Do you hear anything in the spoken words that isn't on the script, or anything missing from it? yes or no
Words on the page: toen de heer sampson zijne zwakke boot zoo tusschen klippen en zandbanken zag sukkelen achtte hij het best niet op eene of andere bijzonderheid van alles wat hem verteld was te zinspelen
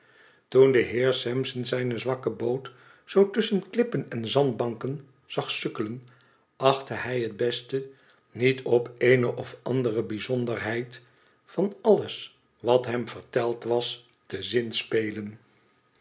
no